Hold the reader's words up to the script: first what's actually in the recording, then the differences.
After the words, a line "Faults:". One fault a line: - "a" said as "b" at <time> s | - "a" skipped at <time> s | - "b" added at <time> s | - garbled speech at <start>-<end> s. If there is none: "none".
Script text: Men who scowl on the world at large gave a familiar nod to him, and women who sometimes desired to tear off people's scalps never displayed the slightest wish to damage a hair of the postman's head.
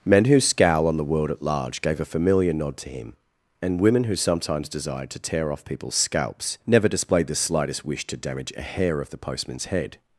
Men who scowl on the world at large gave a familiar nod to him, and women who sometimes desired to tear off people's scalps never displayed the slightest wish to damage a hair of the postman's head.
Faults:
none